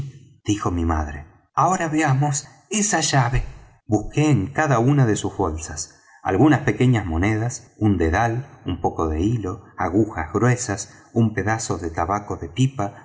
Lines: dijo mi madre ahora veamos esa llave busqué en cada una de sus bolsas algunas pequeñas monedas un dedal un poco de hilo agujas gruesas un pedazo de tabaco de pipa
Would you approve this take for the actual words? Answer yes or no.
yes